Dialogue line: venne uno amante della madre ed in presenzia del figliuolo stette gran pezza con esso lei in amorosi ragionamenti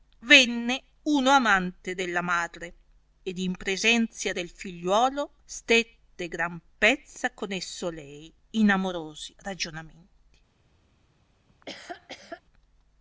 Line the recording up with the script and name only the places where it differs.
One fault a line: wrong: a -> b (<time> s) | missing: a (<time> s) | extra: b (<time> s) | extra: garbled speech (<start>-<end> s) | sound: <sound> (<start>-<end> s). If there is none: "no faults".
sound: laugh (11.5-12.4 s)